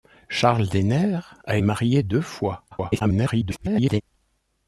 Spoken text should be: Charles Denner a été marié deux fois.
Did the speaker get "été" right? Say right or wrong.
wrong